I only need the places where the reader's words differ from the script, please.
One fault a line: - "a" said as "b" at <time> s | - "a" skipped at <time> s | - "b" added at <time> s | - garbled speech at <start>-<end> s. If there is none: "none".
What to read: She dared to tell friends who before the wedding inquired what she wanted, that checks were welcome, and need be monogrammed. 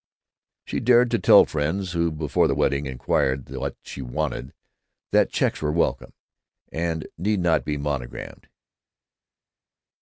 - "not" added at 7.4 s